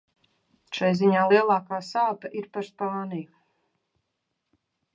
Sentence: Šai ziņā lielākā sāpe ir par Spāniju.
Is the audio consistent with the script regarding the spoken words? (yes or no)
yes